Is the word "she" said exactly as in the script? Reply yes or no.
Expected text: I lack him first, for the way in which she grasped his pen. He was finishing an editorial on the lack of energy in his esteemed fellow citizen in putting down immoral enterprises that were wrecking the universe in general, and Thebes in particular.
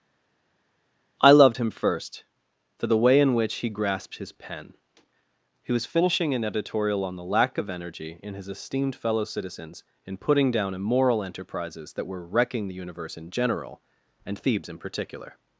no